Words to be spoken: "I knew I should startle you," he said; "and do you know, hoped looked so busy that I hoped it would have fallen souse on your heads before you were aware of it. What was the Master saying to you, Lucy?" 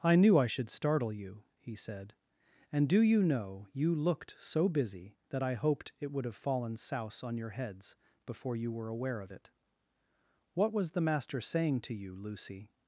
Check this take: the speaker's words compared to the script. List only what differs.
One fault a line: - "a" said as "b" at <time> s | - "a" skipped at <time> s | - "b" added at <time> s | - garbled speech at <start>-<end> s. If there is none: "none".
- "hoped" said as "you" at 3.7 s